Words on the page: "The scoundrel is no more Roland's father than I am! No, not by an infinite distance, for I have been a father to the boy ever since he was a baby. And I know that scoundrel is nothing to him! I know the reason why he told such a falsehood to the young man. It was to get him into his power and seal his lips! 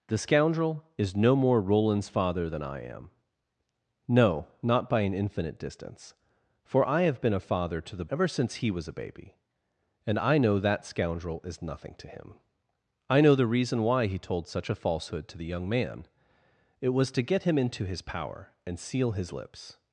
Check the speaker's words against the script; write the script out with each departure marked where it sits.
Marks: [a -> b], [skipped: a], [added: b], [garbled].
"The scoundrel is no more Roland's father than I am! No, not by an infinite distance, for I have been a father to the [skipped: boy] ever since he was a baby. And I know that scoundrel is nothing to him! I know the reason why he told such a falsehood to the young man. It was to get him into his power and seal his lips!